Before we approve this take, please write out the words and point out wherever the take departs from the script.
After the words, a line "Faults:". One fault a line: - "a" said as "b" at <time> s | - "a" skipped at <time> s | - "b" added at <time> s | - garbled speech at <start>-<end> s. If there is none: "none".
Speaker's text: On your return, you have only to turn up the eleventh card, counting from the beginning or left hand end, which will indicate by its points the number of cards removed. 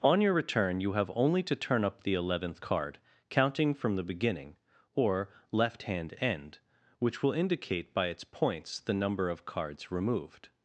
On your return, you have only to turn up the eleventh card, counting from the beginning or left hand end, which will indicate by its points the number of cards removed.
Faults:
none